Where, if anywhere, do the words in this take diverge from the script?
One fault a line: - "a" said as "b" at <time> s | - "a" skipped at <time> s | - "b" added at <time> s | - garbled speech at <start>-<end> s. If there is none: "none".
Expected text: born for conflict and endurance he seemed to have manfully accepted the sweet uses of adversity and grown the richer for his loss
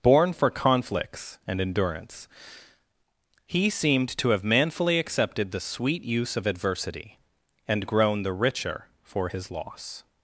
- "conflict" said as "conflicts" at 0.5 s
- "uses" said as "use" at 6.0 s